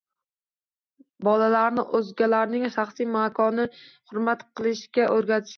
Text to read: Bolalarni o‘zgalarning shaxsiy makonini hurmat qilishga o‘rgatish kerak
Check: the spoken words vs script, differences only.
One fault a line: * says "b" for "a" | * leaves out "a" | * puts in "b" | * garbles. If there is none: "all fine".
all fine